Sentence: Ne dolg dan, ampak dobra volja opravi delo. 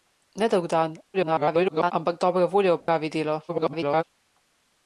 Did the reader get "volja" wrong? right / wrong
right